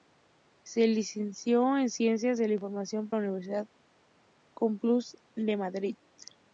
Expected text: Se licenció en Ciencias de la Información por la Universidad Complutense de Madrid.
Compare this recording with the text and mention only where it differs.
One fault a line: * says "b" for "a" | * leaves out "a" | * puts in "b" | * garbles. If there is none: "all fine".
* leaves out "por"